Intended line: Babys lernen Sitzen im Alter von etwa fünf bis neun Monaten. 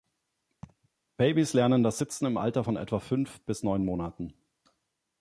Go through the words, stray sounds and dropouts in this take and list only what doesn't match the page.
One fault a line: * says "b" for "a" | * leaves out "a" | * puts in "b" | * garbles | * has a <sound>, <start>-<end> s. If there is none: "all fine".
* has a laugh, 0.6-0.9 s
* puts in "das"